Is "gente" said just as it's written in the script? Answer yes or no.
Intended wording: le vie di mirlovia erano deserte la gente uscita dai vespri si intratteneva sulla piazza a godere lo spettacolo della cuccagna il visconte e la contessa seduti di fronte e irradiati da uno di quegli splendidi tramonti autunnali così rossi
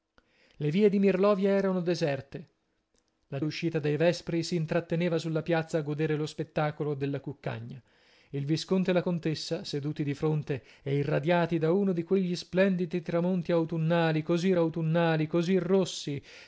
no